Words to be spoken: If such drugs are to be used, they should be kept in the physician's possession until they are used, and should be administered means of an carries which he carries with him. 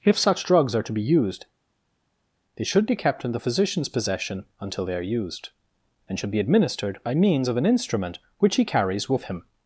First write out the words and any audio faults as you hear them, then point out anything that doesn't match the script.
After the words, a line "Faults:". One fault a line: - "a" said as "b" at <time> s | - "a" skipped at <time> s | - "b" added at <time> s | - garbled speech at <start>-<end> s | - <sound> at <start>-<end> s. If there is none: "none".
If such drugs are to be used, they should be kept in the physician's possession until they are used, and should be administered by means of an instrument which he carries with him.
Faults:
- "by" added at 7.0 s
- "carries" said as "instrument" at 7.6 s